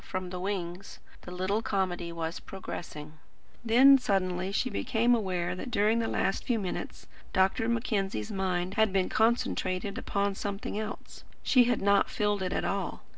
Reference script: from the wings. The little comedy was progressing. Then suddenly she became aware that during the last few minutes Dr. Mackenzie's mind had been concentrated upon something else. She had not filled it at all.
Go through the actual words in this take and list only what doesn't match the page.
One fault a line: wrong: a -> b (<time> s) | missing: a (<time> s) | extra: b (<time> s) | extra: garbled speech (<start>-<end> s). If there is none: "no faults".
no faults